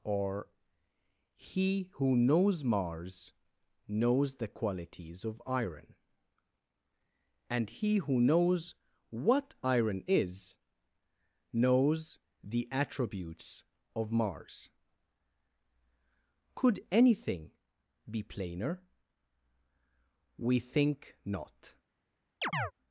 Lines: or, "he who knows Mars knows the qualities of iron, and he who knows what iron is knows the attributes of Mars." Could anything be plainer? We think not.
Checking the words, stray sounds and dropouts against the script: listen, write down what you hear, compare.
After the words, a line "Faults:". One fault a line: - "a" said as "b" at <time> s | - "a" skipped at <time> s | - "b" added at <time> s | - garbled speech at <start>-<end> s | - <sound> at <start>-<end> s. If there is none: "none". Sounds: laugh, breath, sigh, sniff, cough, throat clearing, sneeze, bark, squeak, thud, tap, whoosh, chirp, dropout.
or, "he who knows Mars knows the qualities of iron, and he who knows what iron is knows the attributes of Mars." Could anything be plainer? We think not.
Faults:
- chirp at 22.4-22.7 s